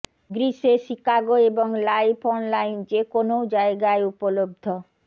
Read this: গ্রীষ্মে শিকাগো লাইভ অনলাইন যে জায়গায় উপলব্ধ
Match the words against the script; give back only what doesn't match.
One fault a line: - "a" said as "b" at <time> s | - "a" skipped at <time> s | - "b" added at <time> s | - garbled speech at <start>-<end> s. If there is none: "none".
- "এবং" added at 1.5 s
- "কোনও" added at 3.1 s